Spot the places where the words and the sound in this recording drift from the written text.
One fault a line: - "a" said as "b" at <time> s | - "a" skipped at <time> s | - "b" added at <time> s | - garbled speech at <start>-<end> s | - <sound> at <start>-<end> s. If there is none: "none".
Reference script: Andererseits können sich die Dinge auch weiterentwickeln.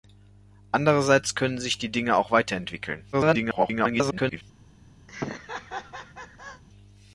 - garbled speech at 3.1-4.4 s
- laugh at 5.1-6.6 s